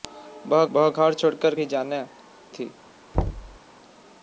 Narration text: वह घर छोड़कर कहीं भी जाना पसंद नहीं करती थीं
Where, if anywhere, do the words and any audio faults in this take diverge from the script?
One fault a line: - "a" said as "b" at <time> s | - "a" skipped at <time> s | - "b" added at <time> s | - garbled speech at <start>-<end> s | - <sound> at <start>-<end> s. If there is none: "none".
- "वह" added at 0.7 s
- "कहीं" skipped at 1.5 s
- "पसंद नहीं करती" skipped at 2.0 s
- thud at 3.1-3.6 s